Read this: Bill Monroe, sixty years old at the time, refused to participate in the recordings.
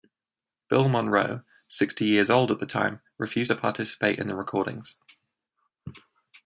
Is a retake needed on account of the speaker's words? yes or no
no